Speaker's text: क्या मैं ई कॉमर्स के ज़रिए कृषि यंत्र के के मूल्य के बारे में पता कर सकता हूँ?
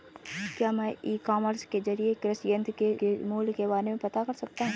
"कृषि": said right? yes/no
yes